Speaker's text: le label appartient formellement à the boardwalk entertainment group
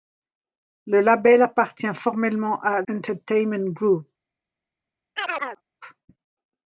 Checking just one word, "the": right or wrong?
wrong